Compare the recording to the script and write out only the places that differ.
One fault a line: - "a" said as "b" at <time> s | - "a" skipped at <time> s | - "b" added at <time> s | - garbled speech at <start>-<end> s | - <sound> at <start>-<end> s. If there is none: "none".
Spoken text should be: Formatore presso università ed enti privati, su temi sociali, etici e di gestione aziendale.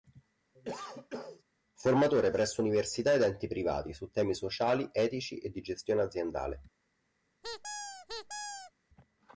- cough at 0.5-1.4 s
- squeak at 7.4-8.7 s